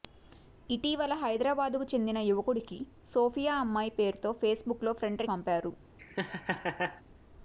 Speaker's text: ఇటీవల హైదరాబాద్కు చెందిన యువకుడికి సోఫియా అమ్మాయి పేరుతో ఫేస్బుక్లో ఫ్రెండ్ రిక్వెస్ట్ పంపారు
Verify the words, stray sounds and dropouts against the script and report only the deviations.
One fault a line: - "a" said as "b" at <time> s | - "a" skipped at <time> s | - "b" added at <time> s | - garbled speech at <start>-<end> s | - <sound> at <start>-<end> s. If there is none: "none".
- "రిక్వెస్ట్" skipped at 5.2 s
- laugh at 6.0-7.0 s